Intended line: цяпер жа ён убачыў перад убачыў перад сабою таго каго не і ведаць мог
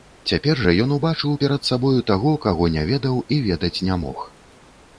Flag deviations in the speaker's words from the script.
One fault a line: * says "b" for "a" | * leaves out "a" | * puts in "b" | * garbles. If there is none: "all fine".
* leaves out "убачыў перад"
* puts in "ведаў"
* puts in "не"